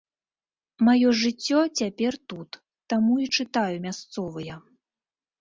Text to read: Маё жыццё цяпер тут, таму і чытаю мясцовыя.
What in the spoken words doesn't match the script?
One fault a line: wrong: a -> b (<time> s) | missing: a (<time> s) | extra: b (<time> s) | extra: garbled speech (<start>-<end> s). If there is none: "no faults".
no faults